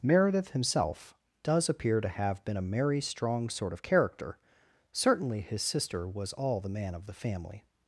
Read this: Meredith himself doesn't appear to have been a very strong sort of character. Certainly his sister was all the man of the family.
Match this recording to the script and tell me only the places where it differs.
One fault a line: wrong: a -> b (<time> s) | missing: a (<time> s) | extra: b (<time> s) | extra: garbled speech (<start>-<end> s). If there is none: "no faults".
wrong: doesn't -> does (1.4 s)
wrong: very -> merry (2.6 s)